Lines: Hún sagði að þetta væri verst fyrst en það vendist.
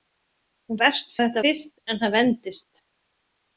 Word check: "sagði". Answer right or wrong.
wrong